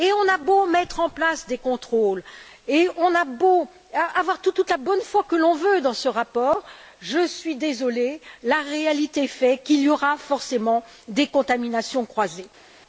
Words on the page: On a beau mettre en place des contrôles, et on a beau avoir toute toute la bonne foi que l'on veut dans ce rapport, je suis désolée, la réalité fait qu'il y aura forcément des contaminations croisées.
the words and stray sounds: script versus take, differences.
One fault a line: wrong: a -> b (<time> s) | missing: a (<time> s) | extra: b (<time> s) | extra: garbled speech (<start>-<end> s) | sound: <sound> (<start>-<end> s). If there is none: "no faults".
no faults